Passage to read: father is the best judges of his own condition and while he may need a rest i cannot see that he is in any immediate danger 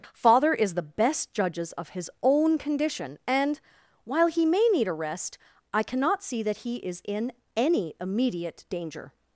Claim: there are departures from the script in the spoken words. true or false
false